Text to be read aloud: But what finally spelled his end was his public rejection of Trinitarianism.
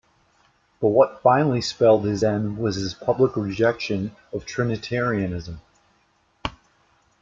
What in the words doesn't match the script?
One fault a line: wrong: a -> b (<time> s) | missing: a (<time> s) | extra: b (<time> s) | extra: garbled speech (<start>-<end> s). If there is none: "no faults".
no faults